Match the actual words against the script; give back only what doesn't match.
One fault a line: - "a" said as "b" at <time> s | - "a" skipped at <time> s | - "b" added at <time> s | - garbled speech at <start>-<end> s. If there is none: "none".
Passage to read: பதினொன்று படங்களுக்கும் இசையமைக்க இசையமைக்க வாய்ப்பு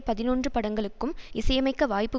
- "இசையமைக்க" skipped at 1.9 s